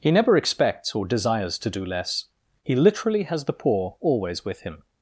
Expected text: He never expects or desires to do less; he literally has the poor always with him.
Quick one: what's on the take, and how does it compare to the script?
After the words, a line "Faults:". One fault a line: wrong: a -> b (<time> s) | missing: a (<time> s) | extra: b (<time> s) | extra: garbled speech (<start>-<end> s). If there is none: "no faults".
He never expects or desires to do less; he literally has the poor always with him.
Faults:
no faults